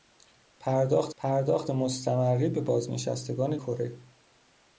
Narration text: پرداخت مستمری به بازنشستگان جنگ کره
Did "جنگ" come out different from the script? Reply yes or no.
yes